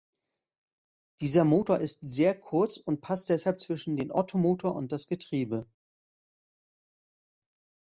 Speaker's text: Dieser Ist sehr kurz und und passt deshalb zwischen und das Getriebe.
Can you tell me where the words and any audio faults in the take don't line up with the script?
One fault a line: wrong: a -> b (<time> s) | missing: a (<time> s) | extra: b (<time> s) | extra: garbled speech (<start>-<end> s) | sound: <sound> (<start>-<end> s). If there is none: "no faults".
extra: Motor (1.4 s)
missing: und (3.0 s)
extra: den Ottomotor (4.0 s)